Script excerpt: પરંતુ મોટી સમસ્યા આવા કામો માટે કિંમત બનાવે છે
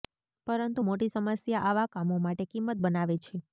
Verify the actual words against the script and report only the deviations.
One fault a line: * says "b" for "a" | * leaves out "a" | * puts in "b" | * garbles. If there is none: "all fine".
all fine